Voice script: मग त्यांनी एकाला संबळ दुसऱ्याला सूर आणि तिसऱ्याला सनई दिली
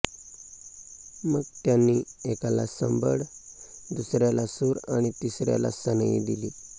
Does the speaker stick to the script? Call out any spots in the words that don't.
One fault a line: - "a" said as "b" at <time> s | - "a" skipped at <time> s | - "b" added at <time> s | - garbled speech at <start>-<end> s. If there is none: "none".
none